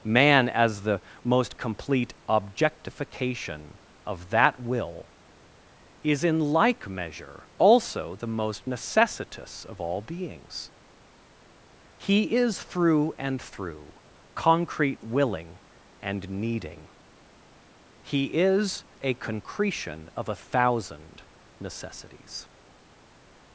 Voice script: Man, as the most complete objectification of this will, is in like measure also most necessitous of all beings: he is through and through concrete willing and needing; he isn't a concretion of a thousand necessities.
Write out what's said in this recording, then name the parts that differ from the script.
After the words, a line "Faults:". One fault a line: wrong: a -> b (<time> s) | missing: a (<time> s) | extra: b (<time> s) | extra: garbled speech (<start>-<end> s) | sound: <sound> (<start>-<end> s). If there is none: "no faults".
Man, as the most complete objectification of that will, is in like measure also the most necessitous of all beings: he is through and through concrete willing and needing; he is a concretion of a thousand necessities.
Faults:
wrong: this -> that (4.3 s)
extra: the (8.2 s)
wrong: isn't -> is (18.3 s)